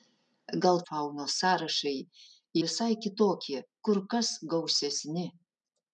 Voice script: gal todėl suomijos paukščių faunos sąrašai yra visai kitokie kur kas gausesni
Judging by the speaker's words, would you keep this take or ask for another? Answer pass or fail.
fail